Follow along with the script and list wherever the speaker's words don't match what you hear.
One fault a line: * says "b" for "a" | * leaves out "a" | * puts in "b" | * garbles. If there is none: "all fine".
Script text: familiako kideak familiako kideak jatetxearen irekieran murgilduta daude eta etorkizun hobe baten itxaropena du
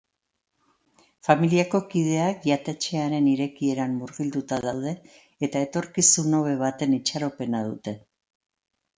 * leaves out "familiako kideak"
* says "dute" for "du"